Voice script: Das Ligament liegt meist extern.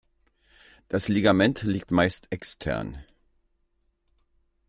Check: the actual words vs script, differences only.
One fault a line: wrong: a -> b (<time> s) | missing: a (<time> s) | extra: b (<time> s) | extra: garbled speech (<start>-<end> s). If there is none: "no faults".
no faults